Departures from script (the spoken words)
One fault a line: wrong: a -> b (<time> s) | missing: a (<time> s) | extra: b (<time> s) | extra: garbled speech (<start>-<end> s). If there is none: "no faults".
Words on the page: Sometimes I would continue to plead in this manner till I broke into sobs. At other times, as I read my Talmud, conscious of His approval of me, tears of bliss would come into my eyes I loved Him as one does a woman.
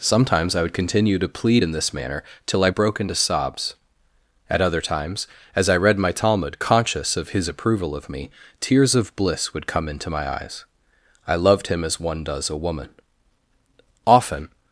extra: Often (14.1 s)